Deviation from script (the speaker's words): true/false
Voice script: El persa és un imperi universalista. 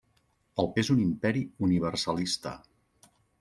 true